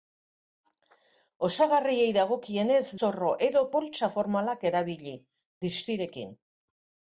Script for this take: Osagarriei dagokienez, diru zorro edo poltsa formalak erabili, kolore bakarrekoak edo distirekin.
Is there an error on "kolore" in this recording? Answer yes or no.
yes